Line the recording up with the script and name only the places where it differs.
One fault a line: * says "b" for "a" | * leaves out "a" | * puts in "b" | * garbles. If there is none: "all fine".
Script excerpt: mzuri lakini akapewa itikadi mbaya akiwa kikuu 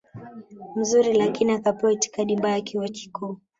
all fine